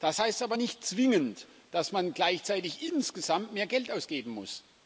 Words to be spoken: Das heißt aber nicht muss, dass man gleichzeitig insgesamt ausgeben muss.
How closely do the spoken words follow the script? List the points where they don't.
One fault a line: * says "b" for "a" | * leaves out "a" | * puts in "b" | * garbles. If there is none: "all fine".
* says "zwingend" for "muss"
* puts in "mehr Geld"